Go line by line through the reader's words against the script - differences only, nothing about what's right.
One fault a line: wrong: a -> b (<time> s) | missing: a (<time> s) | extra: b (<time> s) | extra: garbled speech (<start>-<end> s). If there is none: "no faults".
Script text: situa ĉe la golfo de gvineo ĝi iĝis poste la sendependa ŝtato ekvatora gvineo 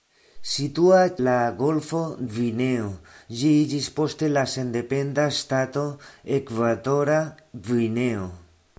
missing: ĉe (1.0 s)
missing: de (2.0 s)